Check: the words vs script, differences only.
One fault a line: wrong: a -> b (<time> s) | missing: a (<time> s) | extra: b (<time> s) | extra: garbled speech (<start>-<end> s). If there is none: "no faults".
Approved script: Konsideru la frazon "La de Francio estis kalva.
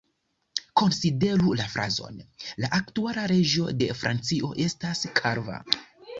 extra: aktuala reĝo (2.8 s)
wrong: estis -> estas (4.7 s)